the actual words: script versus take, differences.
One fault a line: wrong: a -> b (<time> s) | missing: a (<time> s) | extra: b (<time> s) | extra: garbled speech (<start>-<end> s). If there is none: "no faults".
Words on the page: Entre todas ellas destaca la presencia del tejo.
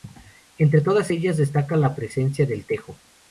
no faults